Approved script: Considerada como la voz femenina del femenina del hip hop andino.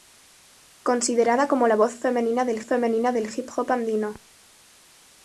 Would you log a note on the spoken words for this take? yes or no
no